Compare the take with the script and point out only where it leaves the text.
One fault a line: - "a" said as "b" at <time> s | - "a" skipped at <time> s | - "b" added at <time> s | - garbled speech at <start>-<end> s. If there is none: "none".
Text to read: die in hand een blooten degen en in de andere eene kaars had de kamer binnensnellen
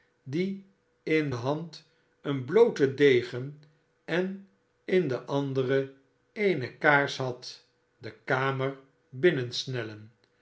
none